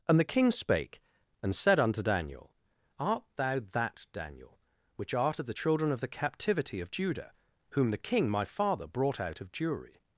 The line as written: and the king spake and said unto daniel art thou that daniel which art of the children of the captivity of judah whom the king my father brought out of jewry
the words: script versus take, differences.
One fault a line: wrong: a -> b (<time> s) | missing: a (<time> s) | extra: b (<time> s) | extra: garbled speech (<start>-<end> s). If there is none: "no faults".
no faults